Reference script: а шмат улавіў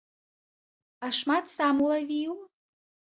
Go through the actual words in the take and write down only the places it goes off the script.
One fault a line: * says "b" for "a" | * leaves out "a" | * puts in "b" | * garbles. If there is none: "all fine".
* puts in "сам"